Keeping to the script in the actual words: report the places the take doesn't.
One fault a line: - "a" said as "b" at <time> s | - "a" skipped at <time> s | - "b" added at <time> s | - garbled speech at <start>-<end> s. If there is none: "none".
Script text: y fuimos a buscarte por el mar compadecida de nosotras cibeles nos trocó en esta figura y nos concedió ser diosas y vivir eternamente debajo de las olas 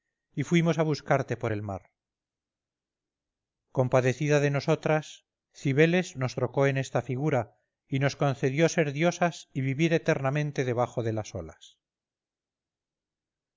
none